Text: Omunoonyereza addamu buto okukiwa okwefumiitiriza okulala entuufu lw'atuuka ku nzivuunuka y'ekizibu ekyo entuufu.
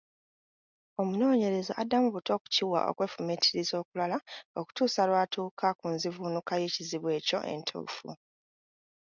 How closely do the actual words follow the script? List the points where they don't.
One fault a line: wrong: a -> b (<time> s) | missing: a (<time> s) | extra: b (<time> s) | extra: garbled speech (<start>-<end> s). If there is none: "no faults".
wrong: entuufu -> okutuusa (4.6 s)